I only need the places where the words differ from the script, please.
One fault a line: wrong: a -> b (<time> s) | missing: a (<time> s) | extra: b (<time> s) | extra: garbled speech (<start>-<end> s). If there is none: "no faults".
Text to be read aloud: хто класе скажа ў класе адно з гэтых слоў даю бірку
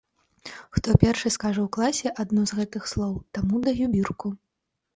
wrong: класе -> першы (1.0 s)
extra: таму (3.4 s)